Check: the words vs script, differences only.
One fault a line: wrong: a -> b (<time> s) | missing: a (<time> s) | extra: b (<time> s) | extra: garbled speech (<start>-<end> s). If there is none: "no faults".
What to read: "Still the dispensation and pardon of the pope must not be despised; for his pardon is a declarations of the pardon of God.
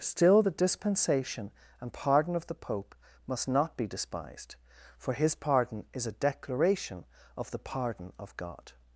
wrong: declarations -> declaration (6.1 s)